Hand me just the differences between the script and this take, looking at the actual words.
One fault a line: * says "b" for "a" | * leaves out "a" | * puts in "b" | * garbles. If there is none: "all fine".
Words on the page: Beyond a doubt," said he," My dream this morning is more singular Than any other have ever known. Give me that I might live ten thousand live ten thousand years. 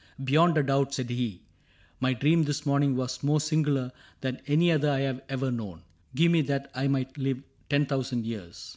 * says "was" for "is"
* puts in "I"
* leaves out "live ten thousand"